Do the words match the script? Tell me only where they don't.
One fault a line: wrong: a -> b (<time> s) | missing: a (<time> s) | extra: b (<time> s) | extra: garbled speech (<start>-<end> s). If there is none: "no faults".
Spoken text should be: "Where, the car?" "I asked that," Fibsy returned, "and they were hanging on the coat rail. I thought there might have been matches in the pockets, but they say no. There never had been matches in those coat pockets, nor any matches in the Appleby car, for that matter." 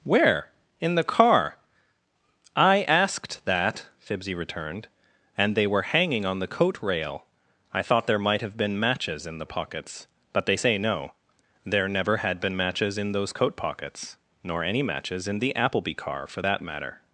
extra: in (0.8 s)